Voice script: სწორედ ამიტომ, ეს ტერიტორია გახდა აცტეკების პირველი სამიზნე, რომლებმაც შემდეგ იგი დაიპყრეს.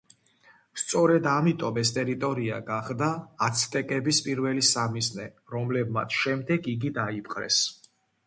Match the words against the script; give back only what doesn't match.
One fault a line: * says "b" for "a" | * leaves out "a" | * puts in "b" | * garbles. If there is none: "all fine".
all fine